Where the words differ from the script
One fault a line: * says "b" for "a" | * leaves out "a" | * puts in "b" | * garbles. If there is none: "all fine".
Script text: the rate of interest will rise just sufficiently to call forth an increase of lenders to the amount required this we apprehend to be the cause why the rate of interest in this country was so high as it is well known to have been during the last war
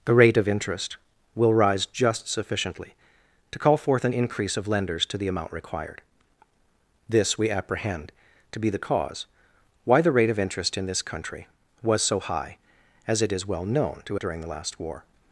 * leaves out "have been"